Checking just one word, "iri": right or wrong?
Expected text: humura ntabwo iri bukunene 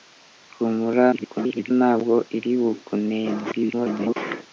right